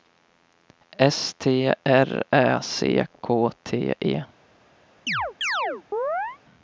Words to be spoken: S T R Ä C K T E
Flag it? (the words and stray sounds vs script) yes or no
yes